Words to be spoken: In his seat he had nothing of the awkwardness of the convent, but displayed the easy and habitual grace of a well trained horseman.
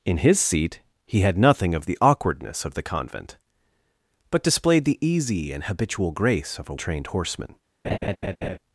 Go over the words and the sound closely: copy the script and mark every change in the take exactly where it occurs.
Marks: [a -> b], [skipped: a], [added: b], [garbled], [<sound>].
In his seat he had nothing of the awkwardness of the convent, but displayed the easy and habitual grace of a [skipped: well] trained horseman. [laugh]